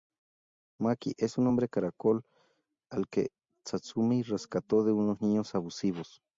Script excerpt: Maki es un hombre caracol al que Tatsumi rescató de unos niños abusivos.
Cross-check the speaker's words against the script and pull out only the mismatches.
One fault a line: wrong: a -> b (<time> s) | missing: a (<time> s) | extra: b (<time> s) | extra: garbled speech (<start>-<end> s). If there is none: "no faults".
no faults